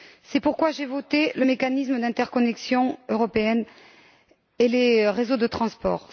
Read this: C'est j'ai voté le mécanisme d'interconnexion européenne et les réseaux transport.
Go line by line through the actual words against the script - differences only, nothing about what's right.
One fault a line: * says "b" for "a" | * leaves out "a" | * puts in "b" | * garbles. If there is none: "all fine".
* puts in "pourquoi"
* puts in "de"